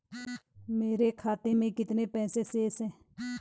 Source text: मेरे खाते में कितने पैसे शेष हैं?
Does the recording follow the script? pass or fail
pass